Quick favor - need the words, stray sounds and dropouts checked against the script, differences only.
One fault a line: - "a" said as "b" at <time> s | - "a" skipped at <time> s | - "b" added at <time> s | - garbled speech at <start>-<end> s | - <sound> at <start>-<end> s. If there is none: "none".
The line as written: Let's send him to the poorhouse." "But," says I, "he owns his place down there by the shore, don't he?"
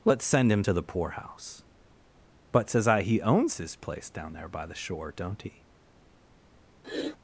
- sniff at 6.8-7.2 s